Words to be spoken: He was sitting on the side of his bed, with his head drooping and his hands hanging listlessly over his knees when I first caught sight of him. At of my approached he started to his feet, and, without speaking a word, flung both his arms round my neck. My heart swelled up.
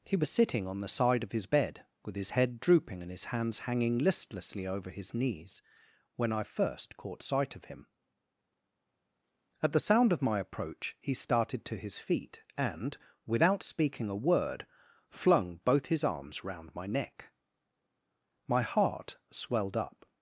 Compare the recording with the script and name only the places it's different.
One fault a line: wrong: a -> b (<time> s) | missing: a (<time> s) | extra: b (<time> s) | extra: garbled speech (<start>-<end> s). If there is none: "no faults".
extra: the sound (9.7 s)
wrong: approached -> approach (10.4 s)